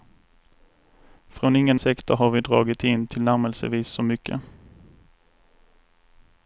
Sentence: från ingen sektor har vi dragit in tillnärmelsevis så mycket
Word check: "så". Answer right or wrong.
right